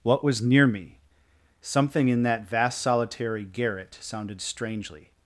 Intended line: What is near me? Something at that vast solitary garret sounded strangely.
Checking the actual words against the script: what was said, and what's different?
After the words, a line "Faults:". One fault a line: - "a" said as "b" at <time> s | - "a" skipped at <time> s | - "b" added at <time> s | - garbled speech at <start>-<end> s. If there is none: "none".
What was near me? Something in that vast solitary garret sounded strangely.
Faults:
- "is" said as "was" at 0.2 s
- "at" said as "in" at 2.1 s